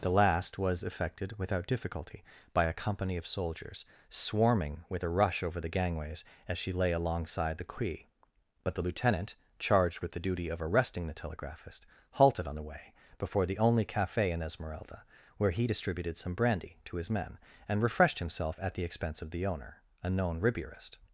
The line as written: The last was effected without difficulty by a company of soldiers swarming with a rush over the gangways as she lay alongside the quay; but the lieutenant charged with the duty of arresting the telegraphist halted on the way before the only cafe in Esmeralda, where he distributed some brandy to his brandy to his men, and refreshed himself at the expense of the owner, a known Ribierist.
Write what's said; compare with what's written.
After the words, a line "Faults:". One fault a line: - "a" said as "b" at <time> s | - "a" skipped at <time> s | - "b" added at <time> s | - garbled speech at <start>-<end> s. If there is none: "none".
The last was effected without difficulty by a company of soldiers swarming with a rush over the gangways as she lay alongside the quay; but the lieutenant charged with the duty of arresting the telegraphist halted on the way before the only cafe in Esmeralda, where he distributed some brandy to his men, and refreshed himself at the expense of the owner, a known Ribierist.
Faults:
- "brandy to his" skipped at 17.1 s